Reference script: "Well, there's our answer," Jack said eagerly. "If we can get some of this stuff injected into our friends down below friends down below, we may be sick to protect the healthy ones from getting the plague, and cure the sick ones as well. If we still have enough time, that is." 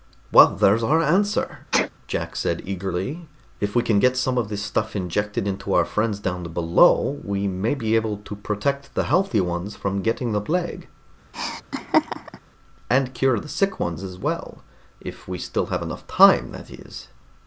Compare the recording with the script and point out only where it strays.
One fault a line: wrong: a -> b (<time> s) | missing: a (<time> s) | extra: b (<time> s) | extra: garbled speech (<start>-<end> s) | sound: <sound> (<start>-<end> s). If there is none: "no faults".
sound: sneeze (1.7-1.9 s)
missing: friends down below (7.2 s)
wrong: sick -> able (8.0 s)
sound: laugh (11.3-12.4 s)